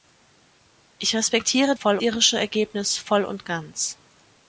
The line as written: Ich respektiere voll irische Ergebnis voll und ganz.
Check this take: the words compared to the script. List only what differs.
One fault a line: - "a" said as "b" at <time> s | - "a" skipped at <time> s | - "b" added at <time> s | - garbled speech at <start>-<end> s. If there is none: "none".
none